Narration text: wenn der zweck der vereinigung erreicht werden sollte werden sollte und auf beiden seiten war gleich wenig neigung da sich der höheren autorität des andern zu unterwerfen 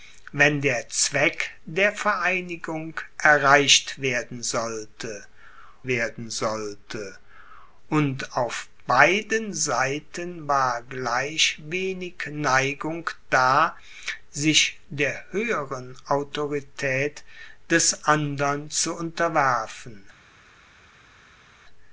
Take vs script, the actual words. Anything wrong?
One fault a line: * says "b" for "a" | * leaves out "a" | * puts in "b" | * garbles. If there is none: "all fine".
all fine